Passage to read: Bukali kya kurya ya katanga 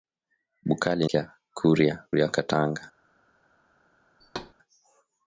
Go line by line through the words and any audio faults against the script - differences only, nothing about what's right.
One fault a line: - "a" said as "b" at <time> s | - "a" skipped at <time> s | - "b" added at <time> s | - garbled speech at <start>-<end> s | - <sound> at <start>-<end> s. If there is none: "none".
- thud at 4.2-4.5 s